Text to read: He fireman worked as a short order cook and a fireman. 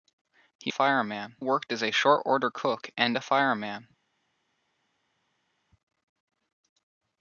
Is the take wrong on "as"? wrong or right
right